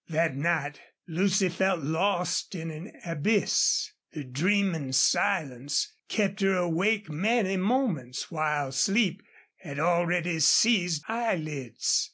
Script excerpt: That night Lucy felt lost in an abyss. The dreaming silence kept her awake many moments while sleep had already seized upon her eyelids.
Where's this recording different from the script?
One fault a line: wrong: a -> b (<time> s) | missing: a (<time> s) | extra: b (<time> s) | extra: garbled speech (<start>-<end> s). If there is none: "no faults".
missing: upon her (11.1 s)